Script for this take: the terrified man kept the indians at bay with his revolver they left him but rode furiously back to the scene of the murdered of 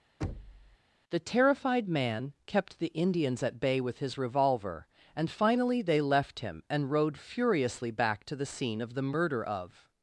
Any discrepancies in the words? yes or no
yes